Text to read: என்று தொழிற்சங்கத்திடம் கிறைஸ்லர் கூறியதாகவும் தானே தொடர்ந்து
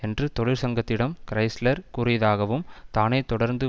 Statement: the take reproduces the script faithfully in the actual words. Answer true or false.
true